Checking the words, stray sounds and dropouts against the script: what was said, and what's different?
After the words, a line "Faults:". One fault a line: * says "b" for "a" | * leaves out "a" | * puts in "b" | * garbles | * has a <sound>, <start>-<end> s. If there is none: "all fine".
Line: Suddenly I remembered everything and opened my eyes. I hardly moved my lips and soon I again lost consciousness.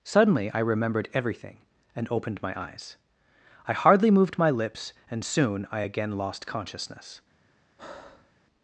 Suddenly I remembered everything and opened my eyes. I hardly moved my lips and soon I again lost consciousness.
Faults:
* has a breath, 7.8-8.3 s